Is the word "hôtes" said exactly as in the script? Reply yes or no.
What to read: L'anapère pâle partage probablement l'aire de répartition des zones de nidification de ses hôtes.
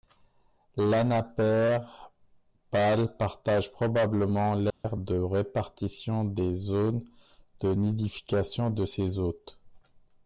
yes